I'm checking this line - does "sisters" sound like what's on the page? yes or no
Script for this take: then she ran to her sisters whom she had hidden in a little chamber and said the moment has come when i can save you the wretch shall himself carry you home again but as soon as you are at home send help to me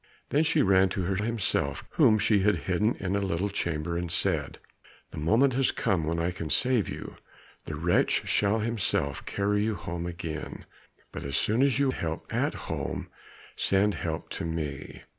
no